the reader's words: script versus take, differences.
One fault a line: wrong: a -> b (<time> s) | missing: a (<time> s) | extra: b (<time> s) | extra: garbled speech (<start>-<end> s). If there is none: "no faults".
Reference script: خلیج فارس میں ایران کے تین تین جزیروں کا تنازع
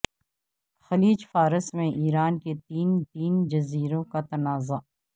no faults